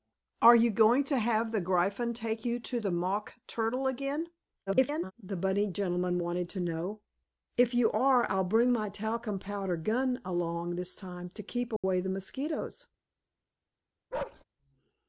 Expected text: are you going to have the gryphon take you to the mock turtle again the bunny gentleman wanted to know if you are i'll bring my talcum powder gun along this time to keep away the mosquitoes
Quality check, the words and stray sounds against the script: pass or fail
fail